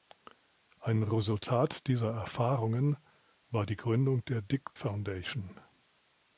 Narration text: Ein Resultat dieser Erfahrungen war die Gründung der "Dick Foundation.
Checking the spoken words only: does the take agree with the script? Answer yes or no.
yes